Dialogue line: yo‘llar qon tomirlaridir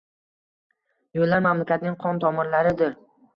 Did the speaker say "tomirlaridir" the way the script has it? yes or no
yes